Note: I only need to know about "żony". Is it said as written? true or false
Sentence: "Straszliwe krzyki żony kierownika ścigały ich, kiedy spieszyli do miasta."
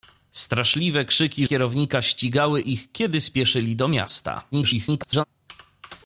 false